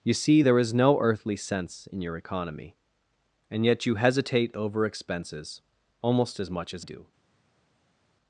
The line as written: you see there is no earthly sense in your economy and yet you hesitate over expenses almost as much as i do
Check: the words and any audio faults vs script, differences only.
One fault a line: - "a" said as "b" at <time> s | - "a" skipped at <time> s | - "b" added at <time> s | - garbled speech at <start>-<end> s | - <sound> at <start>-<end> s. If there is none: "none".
- "i" skipped at 6.8 s